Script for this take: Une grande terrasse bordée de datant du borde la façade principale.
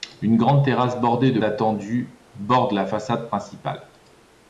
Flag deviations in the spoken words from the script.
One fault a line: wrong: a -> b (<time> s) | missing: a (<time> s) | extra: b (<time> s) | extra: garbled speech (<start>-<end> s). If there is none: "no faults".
no faults